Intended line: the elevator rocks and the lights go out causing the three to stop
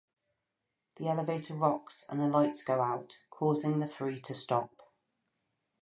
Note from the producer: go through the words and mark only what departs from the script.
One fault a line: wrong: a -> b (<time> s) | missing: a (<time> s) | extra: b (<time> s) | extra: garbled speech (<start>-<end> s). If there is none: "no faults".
no faults